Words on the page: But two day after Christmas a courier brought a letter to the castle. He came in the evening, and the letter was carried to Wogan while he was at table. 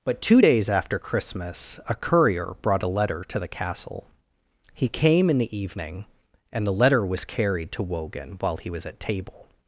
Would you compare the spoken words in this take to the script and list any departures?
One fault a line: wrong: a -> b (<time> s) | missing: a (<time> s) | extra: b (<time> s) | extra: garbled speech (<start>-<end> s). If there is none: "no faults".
wrong: day -> days (0.4 s)